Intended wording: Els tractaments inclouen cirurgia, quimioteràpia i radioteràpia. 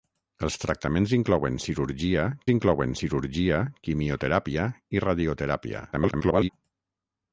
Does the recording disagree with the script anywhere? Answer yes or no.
yes